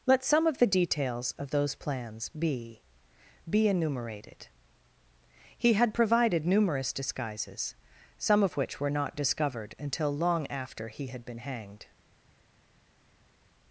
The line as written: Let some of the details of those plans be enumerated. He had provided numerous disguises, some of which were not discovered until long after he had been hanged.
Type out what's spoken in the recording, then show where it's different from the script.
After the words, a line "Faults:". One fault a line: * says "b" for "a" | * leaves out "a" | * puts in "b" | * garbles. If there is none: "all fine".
Let some of the details of those plans be be enumerated. He had provided numerous disguises, some of which were not discovered until long after he had been hanged.
Faults:
* puts in "be"